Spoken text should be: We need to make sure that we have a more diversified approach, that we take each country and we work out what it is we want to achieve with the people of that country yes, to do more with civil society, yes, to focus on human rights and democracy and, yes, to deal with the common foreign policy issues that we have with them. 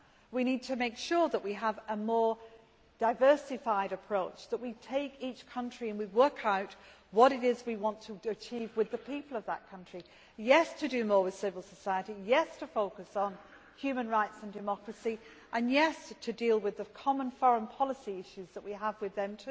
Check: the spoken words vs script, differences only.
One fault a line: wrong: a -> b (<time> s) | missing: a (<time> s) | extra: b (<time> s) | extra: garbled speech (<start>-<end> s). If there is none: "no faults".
no faults